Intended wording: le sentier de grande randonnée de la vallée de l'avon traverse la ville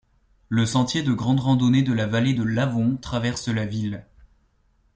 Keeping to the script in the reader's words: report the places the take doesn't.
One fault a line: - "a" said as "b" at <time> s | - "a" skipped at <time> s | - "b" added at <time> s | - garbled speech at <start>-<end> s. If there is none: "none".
none